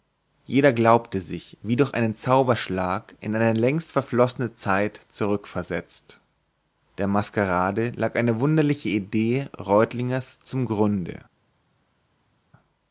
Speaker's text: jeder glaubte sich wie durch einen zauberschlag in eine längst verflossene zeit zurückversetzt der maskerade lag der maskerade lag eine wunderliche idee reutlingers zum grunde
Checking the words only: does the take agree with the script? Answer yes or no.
no